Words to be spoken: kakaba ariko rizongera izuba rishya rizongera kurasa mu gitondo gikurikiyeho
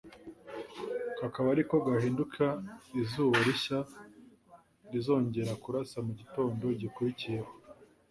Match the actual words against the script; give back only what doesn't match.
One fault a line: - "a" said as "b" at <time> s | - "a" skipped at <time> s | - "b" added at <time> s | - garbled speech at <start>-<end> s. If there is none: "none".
- "rizongera" said as "gahinduka" at 1.9 s